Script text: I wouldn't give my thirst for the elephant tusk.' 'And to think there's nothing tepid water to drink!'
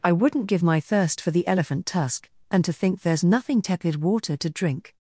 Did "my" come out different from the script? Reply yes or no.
no